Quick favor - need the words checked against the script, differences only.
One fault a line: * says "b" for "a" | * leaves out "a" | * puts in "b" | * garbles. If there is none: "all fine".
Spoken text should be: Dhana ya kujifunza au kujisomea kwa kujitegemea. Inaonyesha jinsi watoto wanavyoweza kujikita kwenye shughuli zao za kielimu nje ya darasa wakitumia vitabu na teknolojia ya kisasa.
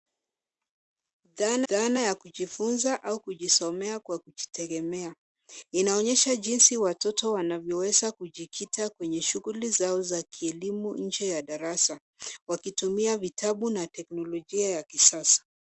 * puts in "dhana"